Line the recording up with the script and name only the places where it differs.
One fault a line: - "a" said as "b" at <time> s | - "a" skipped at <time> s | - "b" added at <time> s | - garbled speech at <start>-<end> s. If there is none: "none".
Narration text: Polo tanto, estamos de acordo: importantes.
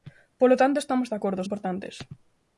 none